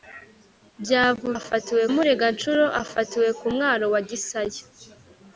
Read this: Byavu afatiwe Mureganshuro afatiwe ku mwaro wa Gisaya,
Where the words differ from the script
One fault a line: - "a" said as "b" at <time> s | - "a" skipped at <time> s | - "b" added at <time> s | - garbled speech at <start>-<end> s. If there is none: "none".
none